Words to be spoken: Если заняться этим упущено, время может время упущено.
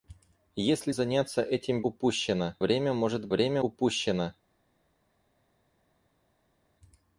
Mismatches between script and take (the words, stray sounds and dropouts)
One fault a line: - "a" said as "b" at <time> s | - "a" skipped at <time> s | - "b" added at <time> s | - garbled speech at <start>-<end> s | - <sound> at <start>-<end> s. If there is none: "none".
none